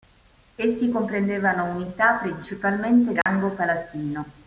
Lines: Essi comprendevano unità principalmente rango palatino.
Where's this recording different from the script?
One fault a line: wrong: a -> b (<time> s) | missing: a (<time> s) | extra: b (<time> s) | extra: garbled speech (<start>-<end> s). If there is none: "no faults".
no faults